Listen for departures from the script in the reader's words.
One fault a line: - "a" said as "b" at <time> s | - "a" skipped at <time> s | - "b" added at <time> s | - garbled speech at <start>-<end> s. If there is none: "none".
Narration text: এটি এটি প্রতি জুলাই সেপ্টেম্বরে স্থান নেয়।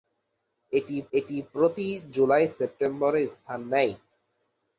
none